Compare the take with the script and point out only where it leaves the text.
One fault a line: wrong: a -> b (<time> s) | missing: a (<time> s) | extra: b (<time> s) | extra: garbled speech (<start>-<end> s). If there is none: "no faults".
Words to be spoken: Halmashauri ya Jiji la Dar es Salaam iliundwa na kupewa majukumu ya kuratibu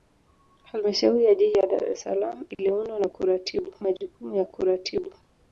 wrong: kupewa -> kuratibu (3.1 s)